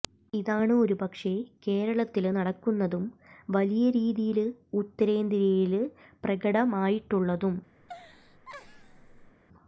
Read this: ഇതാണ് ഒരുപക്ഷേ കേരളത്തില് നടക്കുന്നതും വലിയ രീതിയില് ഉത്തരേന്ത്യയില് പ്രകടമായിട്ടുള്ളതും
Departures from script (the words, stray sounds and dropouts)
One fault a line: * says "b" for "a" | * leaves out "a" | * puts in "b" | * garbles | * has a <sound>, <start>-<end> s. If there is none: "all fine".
* has a laugh, 7.8-9.4 s